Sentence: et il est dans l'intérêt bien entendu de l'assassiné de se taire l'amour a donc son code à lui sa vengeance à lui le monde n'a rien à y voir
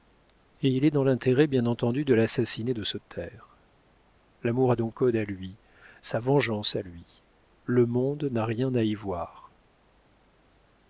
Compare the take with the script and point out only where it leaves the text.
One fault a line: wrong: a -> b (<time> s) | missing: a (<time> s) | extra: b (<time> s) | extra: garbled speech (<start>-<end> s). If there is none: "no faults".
missing: son (5.0 s)